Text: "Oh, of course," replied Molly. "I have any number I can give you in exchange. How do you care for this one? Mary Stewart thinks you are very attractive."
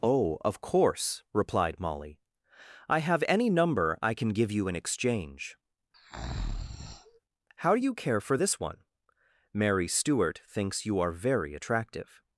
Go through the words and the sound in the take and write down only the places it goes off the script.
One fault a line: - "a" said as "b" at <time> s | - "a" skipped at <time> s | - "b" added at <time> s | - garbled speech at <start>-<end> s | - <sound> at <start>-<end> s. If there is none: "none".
- breath at 5.9-7.2 s